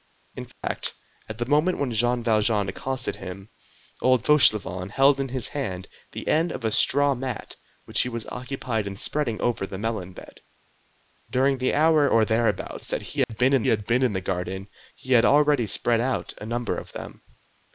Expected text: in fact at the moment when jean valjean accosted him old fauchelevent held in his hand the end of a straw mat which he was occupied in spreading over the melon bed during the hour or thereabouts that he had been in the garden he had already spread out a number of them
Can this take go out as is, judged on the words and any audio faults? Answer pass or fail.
fail